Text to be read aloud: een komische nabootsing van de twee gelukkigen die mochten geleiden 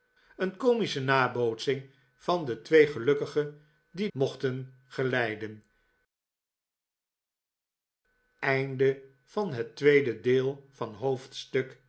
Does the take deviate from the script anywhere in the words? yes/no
no